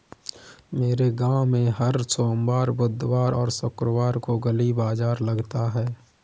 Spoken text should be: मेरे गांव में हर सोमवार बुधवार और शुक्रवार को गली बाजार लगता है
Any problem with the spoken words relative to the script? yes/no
no